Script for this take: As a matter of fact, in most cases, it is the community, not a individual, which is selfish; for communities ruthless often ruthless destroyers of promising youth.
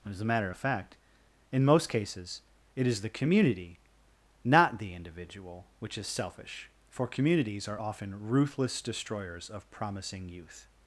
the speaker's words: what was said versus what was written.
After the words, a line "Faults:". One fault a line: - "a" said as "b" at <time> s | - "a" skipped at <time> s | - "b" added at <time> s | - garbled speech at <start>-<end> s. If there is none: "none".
As a matter of fact, in most cases, it is the community, not the individual, which is selfish; for communities are often ruthless destroyers of promising youth.
Faults:
- "a" said as "the" at 4.8 s
- "ruthless" said as "are" at 7.7 s